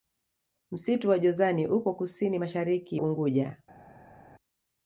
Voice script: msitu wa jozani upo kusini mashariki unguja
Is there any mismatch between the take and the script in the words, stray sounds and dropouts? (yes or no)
no